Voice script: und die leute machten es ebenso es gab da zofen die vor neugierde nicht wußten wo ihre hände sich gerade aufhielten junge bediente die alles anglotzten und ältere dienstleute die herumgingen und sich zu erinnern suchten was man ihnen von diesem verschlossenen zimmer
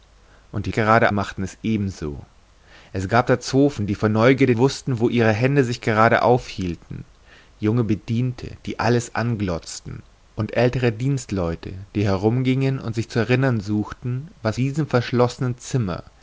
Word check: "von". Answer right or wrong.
wrong